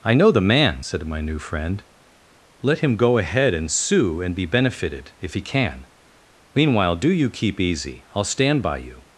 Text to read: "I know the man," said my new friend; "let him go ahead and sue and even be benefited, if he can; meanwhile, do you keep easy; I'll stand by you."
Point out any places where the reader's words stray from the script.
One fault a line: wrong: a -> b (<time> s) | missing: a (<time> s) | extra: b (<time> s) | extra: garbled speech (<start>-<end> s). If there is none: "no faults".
missing: even (4.3 s)